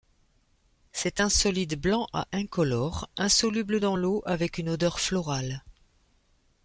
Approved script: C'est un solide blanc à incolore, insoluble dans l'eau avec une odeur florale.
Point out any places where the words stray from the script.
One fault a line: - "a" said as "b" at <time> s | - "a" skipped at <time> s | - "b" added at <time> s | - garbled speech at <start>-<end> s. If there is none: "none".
none